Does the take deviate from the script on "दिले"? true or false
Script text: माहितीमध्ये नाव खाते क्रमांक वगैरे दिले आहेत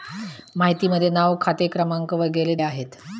true